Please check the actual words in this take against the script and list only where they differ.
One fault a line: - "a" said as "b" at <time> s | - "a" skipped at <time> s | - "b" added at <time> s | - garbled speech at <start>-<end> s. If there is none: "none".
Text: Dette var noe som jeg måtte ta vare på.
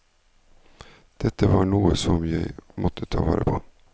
none